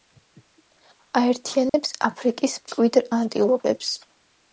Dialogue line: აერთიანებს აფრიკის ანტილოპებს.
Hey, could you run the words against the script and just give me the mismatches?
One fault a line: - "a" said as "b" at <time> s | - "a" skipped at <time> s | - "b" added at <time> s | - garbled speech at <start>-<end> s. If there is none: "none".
- "მკვიდრ" added at 2.6 s